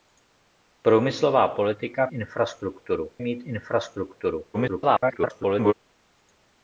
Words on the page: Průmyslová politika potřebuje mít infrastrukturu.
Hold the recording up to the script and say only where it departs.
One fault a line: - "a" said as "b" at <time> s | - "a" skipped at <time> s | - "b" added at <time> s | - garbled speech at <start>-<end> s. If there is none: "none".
- "potřebuje" said as "infrastrukturu" at 2.1 s
- garbled speech at 4.5-5.7 s